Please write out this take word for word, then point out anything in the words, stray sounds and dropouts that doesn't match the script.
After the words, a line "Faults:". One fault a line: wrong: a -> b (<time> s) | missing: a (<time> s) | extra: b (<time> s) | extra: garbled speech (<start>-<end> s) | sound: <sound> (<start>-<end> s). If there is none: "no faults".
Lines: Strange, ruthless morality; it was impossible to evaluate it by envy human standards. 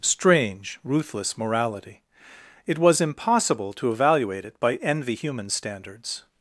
Strange, ruthless morality; it was impossible to evaluate it by envy human standards.
Faults:
no faults